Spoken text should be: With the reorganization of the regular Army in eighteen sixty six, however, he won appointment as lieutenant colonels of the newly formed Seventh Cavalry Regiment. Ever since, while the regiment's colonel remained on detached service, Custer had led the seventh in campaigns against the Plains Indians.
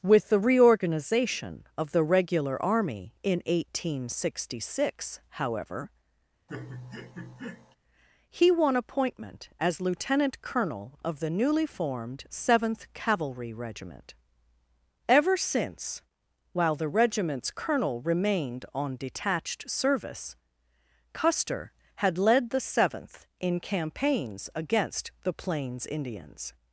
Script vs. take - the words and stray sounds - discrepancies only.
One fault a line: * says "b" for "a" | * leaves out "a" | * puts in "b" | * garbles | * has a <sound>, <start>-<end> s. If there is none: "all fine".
* has a laugh, 6.5-7.8 s
* says "colonel" for "colonels"